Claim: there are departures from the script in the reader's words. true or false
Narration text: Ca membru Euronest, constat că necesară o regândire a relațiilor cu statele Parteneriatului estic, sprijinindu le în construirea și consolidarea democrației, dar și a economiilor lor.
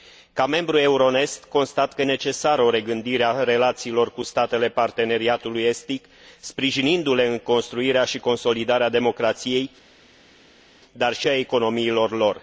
false